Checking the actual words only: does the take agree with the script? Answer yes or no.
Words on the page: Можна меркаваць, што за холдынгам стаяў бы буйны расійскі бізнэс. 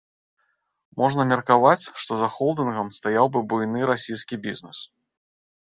yes